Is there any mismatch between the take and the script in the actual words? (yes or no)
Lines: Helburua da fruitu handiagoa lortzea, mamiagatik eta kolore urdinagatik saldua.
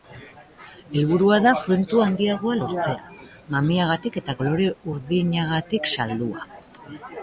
no